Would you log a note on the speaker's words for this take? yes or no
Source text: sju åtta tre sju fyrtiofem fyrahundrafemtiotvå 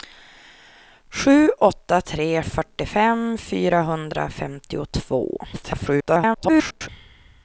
yes